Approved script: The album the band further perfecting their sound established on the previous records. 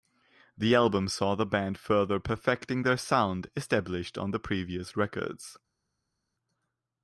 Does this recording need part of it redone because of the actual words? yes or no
yes